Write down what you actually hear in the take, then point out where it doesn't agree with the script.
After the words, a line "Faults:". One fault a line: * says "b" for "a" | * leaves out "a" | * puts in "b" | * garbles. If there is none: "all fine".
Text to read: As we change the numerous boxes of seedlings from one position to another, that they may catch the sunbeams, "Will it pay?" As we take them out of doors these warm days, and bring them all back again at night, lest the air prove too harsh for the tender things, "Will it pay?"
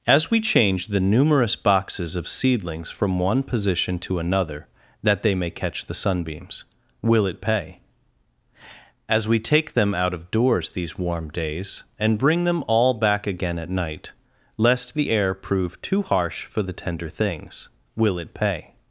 As we change the numerous boxes of seedlings from one position to another, that they may catch the sunbeams, "Will it pay?" As we take them out of doors these warm days, and bring them all back again at night, lest the air prove too harsh for the tender things, "Will it pay?"
Faults:
all fine